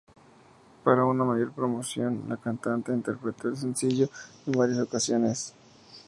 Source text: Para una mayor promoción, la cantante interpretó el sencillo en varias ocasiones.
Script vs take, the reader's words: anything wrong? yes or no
no